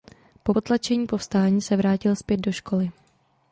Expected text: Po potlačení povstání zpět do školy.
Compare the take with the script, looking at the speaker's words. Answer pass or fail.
fail